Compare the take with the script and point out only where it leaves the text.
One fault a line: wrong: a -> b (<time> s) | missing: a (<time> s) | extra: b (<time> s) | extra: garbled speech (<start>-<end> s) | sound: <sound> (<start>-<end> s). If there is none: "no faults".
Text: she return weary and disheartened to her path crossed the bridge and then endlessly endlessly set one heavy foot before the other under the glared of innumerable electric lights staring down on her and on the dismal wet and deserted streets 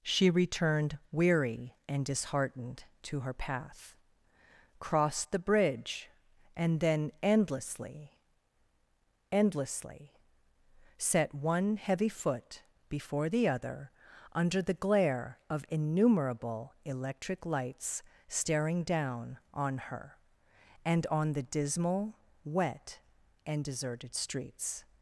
wrong: return -> returned (0.3 s)
wrong: glared -> glare (14.7 s)